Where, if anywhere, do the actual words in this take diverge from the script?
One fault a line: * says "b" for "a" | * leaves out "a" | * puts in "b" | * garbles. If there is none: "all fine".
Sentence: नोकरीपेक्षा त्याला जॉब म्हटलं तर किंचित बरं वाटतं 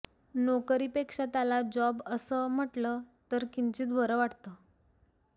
* puts in "असं"